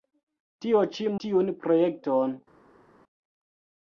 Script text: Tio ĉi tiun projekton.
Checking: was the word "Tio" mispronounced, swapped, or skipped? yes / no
no